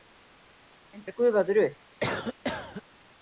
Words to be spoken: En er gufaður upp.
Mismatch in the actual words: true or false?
false